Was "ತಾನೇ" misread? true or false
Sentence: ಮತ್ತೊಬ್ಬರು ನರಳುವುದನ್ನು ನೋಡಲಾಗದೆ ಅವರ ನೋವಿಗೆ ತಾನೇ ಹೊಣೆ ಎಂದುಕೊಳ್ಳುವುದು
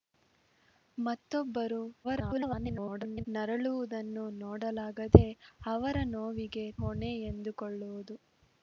true